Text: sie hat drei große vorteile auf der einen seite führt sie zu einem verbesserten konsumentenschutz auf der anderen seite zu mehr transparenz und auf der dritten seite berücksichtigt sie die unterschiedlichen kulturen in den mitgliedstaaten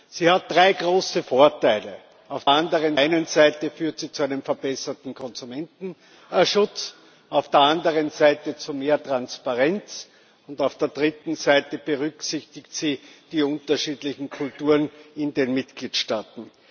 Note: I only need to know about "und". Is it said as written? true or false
true